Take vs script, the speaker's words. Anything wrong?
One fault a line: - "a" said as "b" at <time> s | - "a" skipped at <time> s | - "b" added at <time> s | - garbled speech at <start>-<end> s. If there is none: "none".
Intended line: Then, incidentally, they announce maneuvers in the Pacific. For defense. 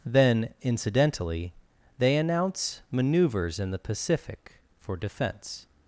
none